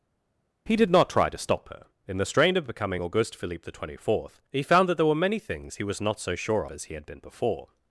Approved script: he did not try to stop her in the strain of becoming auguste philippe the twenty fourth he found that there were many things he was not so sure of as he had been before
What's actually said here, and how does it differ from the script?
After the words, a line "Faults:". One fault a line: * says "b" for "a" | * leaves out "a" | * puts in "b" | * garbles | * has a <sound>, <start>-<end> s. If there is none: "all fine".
he did not try to stop her in the strain of becoming auguste philippe the twenty fourth he found that there were many things he was not so sure as he had been before
Faults:
* leaves out "of"